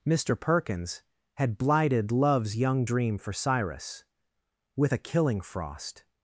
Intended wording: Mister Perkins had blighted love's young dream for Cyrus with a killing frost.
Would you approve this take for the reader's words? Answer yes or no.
yes